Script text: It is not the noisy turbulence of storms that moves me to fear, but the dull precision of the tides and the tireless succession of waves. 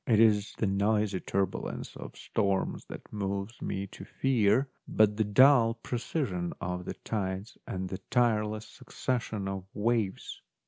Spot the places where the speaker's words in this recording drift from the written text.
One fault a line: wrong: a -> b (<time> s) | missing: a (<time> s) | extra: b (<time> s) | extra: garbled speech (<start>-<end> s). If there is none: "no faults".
missing: not (0.6 s)